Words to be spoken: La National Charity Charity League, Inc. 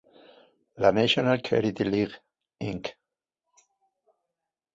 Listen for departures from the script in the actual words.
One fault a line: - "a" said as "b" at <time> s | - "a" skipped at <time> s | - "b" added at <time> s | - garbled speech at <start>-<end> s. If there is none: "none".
- "Charity" skipped at 1.8 s